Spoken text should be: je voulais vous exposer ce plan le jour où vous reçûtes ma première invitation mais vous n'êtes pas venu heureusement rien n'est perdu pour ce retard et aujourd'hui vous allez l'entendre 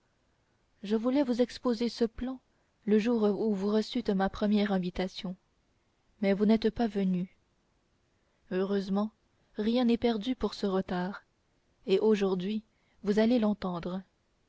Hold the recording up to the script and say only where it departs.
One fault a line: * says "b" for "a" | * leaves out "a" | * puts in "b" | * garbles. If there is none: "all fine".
all fine